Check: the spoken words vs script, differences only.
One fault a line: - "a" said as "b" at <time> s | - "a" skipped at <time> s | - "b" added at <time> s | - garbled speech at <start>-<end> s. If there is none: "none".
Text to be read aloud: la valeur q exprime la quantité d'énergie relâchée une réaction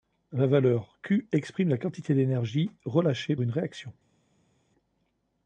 none